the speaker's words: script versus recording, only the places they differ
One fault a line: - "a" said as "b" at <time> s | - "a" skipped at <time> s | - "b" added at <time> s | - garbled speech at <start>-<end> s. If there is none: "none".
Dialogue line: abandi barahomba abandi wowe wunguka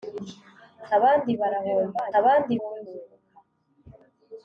none